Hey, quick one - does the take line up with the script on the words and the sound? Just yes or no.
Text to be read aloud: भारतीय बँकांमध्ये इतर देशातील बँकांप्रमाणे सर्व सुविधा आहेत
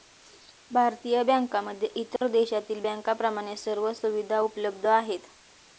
no